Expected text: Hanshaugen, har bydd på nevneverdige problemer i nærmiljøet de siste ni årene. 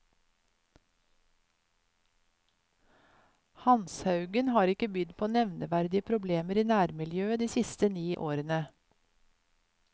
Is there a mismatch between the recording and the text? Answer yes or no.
yes